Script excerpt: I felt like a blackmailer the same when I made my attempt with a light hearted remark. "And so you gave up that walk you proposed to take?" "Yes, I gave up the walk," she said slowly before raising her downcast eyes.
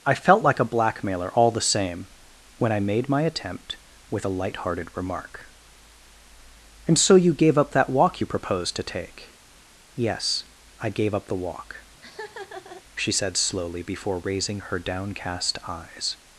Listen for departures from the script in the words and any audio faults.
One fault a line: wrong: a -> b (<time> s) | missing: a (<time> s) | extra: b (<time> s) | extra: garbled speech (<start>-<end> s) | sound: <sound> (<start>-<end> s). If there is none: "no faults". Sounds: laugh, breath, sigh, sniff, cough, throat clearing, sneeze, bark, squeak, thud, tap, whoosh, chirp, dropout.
extra: all (1.4 s)
sound: laugh (12.0-12.8 s)